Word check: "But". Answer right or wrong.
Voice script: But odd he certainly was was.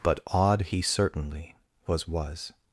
right